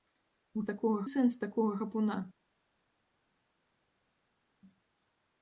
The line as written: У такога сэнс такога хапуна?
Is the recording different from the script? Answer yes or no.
no